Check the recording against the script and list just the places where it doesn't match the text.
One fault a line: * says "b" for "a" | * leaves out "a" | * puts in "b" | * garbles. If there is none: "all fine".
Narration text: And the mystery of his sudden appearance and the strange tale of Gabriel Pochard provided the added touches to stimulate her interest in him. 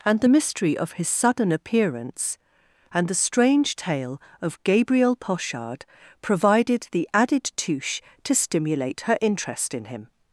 * says "touche" for "touches"